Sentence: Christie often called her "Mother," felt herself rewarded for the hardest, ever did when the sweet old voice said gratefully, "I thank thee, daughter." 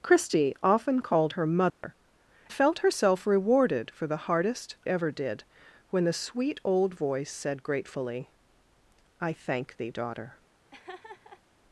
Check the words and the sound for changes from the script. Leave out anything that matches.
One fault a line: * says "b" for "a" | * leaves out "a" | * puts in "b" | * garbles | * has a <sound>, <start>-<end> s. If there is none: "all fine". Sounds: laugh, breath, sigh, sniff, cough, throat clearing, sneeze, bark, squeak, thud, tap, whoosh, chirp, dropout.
* has a dropout, 1.7-1.8 s
* has a laugh, 10.7-11.4 s